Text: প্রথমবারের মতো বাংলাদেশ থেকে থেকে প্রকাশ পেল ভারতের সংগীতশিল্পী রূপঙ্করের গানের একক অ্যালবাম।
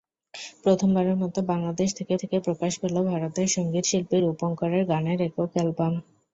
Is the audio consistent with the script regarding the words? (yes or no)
yes